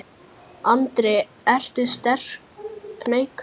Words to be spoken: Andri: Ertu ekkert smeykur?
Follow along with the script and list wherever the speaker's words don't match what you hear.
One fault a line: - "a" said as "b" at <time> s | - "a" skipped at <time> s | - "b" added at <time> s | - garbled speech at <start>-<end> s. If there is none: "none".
- "ekkert" skipped at 1.9 s